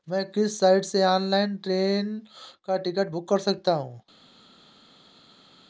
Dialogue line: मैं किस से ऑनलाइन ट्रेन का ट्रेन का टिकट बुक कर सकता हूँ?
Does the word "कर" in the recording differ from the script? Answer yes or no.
no